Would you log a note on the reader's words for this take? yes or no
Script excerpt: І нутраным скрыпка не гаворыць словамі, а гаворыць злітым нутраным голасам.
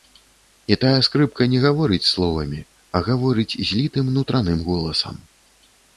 yes